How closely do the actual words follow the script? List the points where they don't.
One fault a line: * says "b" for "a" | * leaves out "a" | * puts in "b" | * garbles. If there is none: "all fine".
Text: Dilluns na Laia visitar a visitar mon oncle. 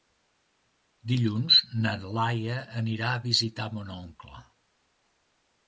* says "anirà" for "visitar"